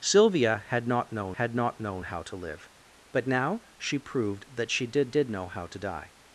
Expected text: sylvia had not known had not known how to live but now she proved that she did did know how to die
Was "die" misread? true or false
false